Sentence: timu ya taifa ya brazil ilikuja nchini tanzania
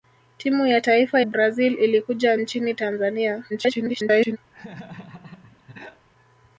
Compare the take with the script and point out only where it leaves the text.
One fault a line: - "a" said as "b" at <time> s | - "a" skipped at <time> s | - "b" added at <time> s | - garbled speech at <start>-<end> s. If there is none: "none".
- "ya" skipped at 1.2 s
- garbled speech at 3.5-4.4 s